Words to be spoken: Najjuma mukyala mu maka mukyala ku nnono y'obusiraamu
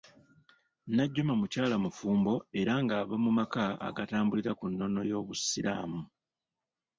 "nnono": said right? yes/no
yes